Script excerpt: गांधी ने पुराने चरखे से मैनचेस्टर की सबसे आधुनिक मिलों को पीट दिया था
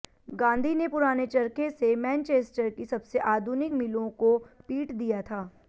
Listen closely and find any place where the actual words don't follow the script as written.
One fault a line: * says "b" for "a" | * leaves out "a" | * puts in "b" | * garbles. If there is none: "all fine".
all fine